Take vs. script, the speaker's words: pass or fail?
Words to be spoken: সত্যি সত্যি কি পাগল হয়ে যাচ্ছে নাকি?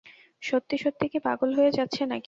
pass